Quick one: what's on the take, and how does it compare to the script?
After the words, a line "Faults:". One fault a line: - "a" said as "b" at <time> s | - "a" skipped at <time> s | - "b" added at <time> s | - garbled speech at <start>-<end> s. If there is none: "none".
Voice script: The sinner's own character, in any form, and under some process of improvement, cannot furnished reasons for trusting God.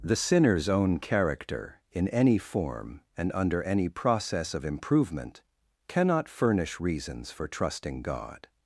The sinner's own character, in any form, and under any process of improvement, cannot furnish reasons for trusting God.
Faults:
- "some" said as "any" at 3.6 s
- "furnished" said as "furnish" at 6.3 s